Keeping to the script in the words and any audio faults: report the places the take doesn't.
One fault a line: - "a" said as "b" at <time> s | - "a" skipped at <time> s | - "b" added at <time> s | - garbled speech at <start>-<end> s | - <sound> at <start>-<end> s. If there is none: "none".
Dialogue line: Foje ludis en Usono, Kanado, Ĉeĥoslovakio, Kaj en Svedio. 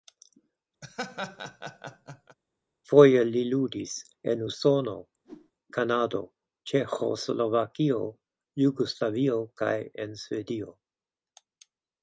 - laugh at 0.8-2.4 s
- "li" added at 3.3 s
- whoosh at 5.2-5.5 s
- "Jugoslavio" added at 8.7 s